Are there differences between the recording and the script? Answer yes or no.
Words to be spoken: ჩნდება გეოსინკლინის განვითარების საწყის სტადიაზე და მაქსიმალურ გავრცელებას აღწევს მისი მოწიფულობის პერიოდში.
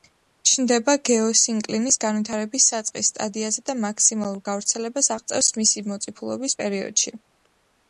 no